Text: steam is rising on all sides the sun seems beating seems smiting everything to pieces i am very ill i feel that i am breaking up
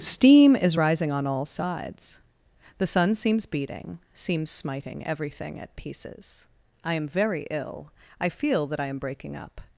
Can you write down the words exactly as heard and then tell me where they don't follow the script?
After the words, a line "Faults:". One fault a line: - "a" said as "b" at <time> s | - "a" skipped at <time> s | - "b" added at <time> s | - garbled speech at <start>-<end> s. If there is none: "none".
steam is rising on all sides the sun seems beating seems smiting everything at pieces i am very ill i feel that i am breaking up
Faults:
- "to" said as "at" at 5.6 s